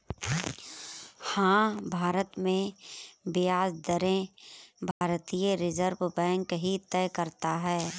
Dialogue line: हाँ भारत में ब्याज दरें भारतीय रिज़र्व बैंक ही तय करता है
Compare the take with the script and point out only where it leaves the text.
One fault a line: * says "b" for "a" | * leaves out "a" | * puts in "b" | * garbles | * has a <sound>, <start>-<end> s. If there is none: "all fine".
* has a dropout, 4.9-5.0 s